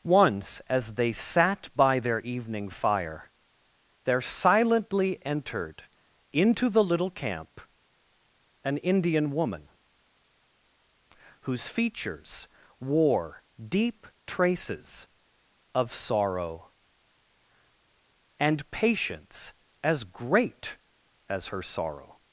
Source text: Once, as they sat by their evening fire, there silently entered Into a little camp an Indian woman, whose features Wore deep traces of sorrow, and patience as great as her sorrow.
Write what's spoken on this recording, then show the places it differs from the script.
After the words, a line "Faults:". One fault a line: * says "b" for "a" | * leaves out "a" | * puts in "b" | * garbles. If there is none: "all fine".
Once, as they sat by their evening fire, there silently entered Into the little camp an Indian woman, whose features Wore deep traces of sorrow, and patience as great as her sorrow.
Faults:
* says "the" for "a"